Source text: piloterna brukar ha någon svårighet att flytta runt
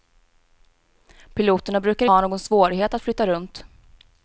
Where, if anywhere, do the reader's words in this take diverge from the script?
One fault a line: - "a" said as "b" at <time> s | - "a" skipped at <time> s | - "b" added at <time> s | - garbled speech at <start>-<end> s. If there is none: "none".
none